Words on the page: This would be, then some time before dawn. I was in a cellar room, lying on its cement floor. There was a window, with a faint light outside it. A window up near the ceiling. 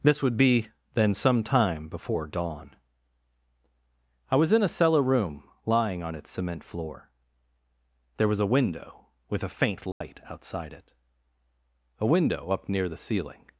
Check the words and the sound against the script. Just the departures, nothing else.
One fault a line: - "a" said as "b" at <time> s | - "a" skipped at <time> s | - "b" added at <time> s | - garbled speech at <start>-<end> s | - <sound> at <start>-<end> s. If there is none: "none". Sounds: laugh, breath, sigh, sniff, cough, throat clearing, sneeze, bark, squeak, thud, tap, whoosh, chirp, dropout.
- dropout at 9.9-10.0 s